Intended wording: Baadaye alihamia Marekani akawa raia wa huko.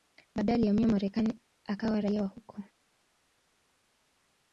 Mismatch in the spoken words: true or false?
false